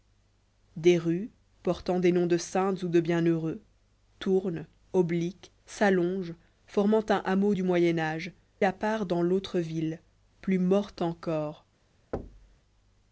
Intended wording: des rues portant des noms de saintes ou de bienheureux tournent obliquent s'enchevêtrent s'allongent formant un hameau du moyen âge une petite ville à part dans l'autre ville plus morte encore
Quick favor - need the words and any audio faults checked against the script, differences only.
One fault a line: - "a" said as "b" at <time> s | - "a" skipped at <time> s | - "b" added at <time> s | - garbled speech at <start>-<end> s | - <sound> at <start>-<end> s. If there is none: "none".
- "s'enchevêtrent" skipped at 5.5 s
- "une petite ville" skipped at 8.3 s
- thud at 12.1-12.6 s